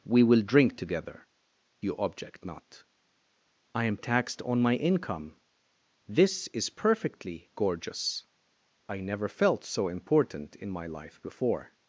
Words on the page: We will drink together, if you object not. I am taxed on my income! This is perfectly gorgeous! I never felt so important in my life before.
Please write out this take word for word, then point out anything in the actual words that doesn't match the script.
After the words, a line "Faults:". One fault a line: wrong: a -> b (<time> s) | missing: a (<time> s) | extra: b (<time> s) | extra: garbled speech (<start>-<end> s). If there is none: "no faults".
We will drink together, you object not. I am taxed on my income! This is perfectly gorgeous! I never felt so important in my life before.
Faults:
missing: if (1.3 s)